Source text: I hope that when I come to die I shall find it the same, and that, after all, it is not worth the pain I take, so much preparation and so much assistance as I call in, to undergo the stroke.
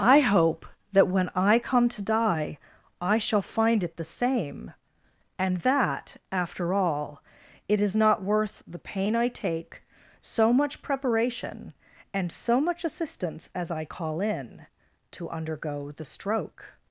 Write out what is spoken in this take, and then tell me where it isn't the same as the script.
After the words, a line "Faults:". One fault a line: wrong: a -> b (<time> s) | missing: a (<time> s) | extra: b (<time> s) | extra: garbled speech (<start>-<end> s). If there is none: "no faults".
I hope that when I come to die I shall find it the same, and that, after all, it is not worth the pain I take, so much preparation and so much assistance as I call in, to undergo the stroke.
Faults:
no faults